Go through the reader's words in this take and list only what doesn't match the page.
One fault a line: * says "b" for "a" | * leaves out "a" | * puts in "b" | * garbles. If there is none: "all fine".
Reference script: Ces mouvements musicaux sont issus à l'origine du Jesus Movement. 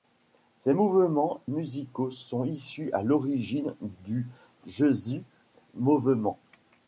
all fine